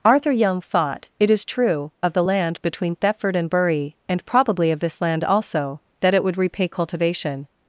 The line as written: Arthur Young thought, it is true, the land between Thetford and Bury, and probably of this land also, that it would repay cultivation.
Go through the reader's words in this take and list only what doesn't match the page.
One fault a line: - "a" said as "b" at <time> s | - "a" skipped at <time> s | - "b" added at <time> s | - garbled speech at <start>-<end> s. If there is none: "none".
- "of" added at 2.0 s